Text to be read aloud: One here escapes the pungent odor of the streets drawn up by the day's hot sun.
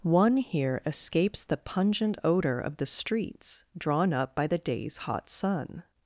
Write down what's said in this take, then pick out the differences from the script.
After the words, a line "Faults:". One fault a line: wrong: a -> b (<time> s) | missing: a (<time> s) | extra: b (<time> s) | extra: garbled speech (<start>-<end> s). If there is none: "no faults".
One here escapes the pungent odor of the streets drawn up by the day's hot sun.
Faults:
no faults